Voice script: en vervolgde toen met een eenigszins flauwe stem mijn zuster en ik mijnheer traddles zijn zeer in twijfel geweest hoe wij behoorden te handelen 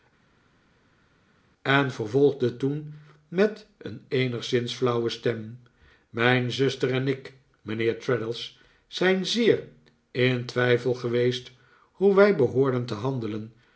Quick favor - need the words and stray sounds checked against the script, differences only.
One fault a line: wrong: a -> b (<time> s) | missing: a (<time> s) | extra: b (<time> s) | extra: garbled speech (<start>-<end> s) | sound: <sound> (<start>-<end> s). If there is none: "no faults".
no faults